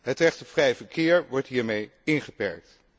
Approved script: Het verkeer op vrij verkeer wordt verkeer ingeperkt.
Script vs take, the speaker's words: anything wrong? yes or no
yes